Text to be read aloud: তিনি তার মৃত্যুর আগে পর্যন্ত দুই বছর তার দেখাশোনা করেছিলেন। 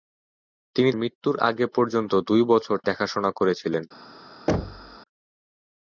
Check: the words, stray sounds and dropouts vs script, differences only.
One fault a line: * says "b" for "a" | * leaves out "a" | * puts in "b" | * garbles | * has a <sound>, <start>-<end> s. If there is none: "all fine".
* leaves out "তার"
* leaves out "তার"
* has a thud, 4.5-5.0 s